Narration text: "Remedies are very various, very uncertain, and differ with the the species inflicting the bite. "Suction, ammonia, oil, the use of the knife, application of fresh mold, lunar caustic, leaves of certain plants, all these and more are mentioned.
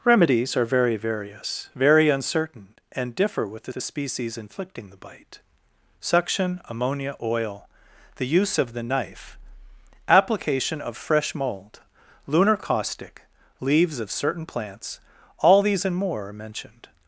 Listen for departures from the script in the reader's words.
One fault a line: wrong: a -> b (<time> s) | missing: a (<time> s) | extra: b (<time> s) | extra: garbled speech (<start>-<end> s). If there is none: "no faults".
no faults